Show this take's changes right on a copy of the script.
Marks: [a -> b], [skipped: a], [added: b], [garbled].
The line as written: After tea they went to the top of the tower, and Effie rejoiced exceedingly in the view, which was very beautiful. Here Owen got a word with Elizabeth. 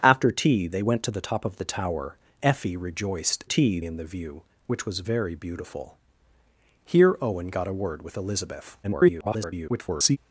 After tea they went to the top of the tower, [skipped: and] Effie rejoiced [exceedingly -> tea] in the view, which was very beautiful. Here Owen got a word with Elizabeth. [garbled]